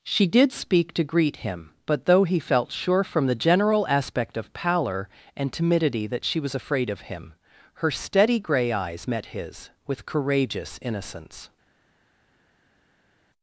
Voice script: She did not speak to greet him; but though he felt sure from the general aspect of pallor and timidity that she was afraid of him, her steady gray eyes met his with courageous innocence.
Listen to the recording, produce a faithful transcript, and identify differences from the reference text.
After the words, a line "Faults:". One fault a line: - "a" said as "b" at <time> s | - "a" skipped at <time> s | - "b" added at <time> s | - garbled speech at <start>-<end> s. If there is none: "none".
She did speak to greet him; but though he felt sure from the general aspect of pallor and timidity that she was afraid of him, her steady gray eyes met his with courageous innocence.
Faults:
- "not" skipped at 0.5 s